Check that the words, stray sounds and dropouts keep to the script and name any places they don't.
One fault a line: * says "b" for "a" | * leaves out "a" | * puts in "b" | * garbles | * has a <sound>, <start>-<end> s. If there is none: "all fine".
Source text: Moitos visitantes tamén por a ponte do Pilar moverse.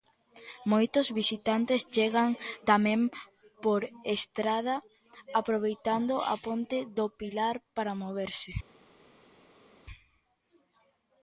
* puts in "chegan"
* puts in "estrada aproveitando"
* puts in "para"